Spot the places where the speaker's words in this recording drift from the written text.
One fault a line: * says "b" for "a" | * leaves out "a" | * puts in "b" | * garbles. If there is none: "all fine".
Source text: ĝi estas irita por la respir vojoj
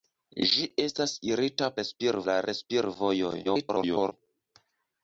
* says "respir" for "por"
* garbles